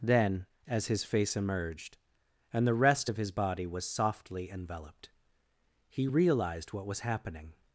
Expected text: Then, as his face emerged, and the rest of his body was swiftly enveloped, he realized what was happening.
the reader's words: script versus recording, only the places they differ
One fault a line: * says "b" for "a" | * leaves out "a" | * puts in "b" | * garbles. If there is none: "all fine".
* says "softly" for "swiftly"